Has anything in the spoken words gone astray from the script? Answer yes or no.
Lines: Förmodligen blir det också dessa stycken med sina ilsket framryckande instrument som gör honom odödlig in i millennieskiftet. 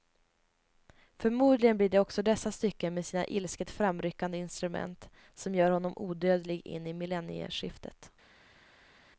no